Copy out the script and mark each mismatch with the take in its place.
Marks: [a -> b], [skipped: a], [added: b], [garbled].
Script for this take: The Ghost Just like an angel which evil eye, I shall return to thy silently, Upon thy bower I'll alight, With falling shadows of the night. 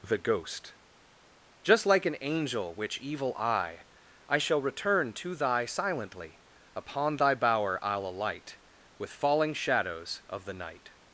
The Ghost Just like an angel which evil eye, I shall return to thy silently, Upon thy bower I'll alight, With falling shadows of the night.